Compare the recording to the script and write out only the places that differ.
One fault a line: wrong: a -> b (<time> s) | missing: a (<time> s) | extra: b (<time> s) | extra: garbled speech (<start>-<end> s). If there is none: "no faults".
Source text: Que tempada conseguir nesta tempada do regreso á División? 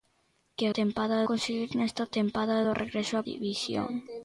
no faults